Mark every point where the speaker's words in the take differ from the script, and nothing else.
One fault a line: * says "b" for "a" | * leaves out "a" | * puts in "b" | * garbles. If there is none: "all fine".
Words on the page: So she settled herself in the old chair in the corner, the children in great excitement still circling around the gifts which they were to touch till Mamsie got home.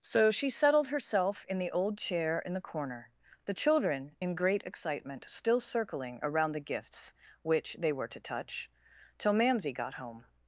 all fine